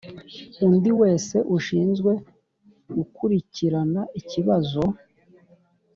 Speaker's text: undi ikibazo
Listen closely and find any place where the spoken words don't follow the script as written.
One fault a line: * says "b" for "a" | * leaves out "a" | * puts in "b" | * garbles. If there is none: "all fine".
* puts in "wese ushinzwe gukurikirana"